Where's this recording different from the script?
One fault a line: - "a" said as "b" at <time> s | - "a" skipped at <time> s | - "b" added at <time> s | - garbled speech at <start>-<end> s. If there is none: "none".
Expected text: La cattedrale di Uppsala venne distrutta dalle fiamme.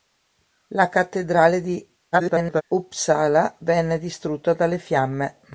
- garbled speech at 2.1-2.6 s